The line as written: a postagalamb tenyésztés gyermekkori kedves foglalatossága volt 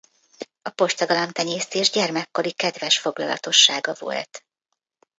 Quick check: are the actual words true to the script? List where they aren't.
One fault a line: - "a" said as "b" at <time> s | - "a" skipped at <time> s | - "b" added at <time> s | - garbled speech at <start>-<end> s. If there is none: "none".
none